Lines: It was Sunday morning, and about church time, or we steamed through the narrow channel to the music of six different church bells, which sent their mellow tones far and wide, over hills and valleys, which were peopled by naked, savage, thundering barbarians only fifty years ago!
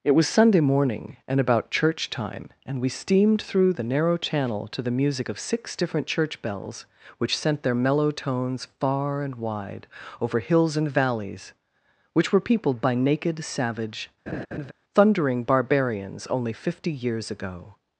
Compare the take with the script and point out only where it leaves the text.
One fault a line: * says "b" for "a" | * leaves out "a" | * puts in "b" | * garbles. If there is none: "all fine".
* says "and" for "or"